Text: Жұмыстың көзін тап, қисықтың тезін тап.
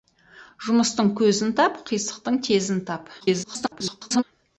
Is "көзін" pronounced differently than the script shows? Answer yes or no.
no